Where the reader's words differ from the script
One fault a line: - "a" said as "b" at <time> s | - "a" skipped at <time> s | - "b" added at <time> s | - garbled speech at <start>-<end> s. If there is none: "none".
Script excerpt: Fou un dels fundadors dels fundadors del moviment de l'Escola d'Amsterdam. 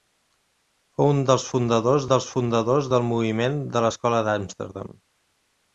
none